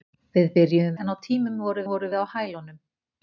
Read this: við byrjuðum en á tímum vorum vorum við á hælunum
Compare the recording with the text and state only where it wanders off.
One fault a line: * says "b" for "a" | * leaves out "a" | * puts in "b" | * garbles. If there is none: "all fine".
all fine